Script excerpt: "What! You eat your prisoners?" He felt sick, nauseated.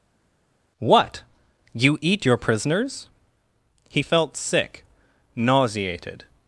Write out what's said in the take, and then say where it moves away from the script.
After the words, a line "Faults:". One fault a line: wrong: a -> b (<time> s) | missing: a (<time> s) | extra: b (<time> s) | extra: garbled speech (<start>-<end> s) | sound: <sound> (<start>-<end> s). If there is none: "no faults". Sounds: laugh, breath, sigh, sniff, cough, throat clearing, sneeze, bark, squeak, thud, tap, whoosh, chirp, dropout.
"What! You eat your prisoners?" He felt sick, nauseated.
Faults:
no faults